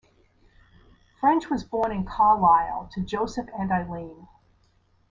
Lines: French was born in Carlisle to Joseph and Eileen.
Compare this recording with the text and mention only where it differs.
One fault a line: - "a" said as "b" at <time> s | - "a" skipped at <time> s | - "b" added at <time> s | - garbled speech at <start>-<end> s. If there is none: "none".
none